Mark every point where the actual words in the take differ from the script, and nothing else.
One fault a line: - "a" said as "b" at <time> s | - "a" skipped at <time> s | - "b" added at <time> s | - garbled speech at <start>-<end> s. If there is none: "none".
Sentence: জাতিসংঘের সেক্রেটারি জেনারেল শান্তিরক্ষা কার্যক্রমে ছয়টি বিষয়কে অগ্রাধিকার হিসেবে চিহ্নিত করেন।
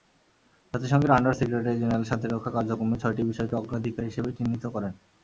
- "আন্ডার" added at 1.1 s